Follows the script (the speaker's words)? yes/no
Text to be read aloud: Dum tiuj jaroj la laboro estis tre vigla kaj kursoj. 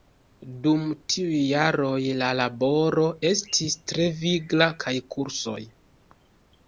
yes